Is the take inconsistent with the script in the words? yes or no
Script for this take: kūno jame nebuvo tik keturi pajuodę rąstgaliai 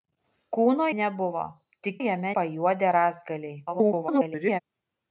yes